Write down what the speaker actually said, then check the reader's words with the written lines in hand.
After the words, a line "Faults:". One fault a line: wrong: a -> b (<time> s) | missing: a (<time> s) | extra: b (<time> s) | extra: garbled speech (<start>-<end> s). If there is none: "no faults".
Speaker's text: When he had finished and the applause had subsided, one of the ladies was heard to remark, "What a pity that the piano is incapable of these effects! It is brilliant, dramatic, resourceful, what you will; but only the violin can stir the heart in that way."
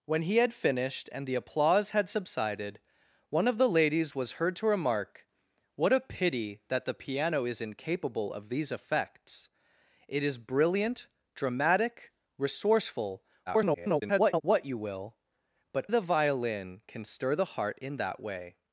When he had finished and the applause had subsided, one of the ladies was heard to remark, "What a pity that the piano is incapable of these effects! It is brilliant, dramatic, resourceful, [garbled] what you will; but the violin can stir the heart in that way."
Faults:
extra: garbled speech (13.5-14.4 s)
missing: only (15.9 s)